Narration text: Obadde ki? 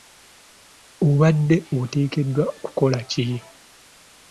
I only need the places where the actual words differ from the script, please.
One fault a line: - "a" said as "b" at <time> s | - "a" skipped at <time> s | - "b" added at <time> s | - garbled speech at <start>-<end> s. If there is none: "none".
- "oteekeddwa kukola" added at 1.8 s